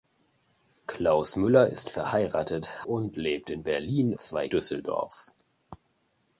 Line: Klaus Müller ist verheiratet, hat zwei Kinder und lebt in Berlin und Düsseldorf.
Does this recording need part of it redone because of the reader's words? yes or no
yes